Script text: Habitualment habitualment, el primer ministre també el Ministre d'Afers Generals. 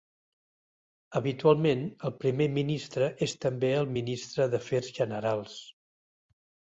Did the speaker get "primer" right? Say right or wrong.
right